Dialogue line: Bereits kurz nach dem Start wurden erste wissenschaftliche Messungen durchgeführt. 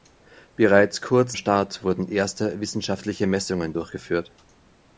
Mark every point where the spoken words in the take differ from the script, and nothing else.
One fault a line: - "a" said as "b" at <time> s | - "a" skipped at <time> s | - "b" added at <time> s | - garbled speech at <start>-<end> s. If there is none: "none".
- "nach dem" skipped at 1.4 s